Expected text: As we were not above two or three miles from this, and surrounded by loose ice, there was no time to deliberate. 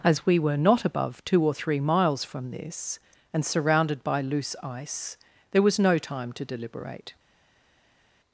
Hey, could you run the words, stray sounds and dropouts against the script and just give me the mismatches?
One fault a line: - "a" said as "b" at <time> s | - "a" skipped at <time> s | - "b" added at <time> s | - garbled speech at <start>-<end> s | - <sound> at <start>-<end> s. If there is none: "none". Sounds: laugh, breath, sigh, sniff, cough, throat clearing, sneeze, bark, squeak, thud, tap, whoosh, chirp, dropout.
none